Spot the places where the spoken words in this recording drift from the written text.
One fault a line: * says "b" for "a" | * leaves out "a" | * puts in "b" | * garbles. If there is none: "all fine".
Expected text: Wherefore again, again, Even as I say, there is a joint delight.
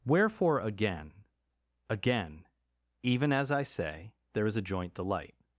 all fine